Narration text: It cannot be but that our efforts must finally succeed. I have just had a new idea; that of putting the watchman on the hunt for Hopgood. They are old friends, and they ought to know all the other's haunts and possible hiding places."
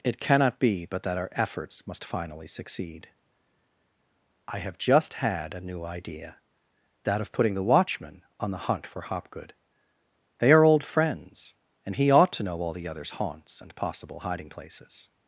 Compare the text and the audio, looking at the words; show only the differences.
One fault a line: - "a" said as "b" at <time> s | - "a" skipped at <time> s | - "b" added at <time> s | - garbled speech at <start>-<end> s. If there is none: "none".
- "they" said as "he" at 12.0 s